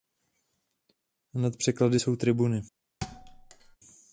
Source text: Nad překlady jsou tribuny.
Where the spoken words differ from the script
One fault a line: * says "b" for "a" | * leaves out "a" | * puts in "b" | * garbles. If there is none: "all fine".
all fine